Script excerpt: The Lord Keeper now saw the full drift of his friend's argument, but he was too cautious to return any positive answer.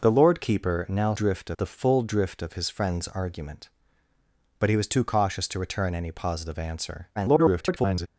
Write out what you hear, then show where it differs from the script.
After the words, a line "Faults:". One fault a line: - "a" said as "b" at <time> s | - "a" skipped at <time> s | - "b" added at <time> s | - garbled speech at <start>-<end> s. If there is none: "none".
The Lord Keeper now drift the full drift of his friend's argument, but he was too cautious to return any positive answer. [garbled]
Faults:
- "saw" said as "drift" at 1.1 s
- garbled speech at 7.2-8.1 s